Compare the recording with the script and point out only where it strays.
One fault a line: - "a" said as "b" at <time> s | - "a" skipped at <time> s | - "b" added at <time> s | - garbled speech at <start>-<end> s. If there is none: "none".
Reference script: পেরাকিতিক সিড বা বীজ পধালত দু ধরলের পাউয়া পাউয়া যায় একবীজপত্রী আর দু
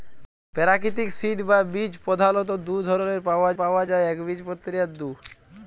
none